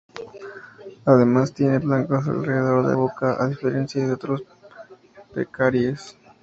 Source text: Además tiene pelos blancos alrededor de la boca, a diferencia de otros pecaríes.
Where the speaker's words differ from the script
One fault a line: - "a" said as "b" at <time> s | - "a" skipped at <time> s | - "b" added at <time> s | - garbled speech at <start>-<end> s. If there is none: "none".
- "pelos" skipped at 1.8 s
- "la" skipped at 2.9 s